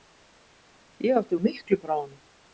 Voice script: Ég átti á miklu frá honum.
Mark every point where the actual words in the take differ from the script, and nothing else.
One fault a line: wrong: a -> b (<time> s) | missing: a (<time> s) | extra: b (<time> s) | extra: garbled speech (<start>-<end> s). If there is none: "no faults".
no faults